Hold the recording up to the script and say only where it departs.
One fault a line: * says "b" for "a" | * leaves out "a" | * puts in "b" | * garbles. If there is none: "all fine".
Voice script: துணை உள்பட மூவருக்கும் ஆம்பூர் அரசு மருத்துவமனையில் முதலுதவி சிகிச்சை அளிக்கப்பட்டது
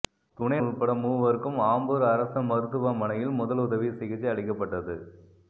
all fine